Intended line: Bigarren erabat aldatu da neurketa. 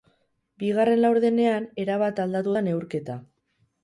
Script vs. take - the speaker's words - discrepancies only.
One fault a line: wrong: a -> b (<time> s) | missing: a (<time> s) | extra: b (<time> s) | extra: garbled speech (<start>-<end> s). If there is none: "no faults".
extra: laurdenean (1.0 s)